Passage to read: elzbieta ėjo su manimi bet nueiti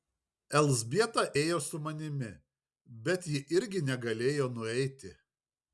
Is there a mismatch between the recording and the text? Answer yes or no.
yes